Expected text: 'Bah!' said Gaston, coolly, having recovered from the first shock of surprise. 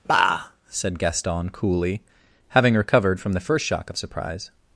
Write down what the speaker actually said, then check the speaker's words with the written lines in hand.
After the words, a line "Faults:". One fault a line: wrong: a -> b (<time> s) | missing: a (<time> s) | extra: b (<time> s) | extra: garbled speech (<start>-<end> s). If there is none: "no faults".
'Bah!' said Gaston, coolly, having recovered from the first shock of surprise.
Faults:
no faults